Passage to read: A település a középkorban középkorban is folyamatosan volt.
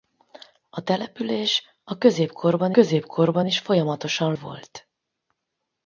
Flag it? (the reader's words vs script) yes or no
no